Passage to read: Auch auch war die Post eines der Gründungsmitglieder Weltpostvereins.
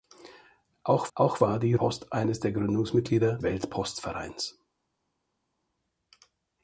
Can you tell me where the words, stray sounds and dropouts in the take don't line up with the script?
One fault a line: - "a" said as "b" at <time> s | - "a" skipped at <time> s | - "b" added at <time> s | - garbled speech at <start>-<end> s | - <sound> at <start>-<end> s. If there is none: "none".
none